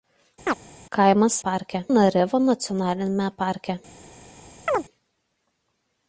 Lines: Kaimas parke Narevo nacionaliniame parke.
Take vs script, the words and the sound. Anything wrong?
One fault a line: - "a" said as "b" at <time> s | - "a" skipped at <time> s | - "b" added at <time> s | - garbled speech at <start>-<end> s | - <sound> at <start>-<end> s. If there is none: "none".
- chirp at 0.5-0.5 s
- chirp at 4.7-4.8 s